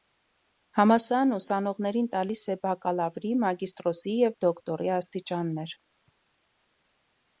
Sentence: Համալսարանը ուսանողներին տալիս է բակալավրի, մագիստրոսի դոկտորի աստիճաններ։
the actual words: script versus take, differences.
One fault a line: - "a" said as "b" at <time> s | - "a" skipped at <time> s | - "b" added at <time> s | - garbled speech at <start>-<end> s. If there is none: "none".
- "և" added at 4.2 s